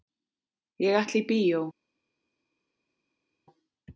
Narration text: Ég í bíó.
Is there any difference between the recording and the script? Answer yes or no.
yes